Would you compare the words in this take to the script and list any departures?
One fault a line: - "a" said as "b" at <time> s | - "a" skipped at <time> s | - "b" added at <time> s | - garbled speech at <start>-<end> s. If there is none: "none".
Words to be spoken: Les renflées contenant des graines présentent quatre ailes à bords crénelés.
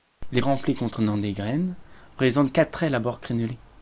none